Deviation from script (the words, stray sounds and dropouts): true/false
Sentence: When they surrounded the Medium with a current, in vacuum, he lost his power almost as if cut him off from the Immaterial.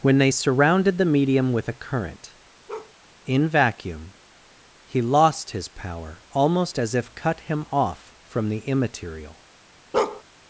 true